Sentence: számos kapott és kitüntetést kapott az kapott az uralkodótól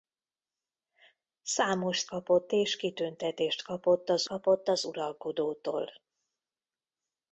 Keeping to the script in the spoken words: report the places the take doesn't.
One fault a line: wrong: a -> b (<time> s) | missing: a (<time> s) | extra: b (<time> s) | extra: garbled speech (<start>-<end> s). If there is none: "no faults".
no faults